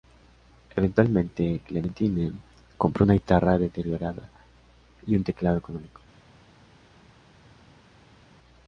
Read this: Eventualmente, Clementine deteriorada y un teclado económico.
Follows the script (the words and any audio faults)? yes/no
no